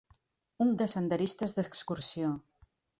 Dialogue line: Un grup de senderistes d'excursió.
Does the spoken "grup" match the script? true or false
false